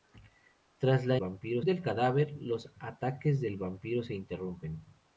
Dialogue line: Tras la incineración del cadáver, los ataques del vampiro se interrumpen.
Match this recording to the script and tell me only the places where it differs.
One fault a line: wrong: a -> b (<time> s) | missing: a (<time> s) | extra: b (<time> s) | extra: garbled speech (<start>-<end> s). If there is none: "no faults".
wrong: incineración -> vampiro (1.2 s)